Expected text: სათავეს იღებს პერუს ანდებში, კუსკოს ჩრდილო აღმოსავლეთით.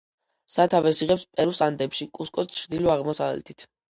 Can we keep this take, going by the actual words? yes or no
yes